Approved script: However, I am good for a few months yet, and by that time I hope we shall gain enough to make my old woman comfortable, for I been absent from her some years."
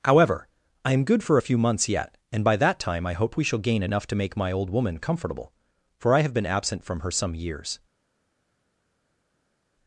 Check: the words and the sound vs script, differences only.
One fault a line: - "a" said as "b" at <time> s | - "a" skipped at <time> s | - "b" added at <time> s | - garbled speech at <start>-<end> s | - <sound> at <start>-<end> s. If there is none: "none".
- "have" added at 6.2 s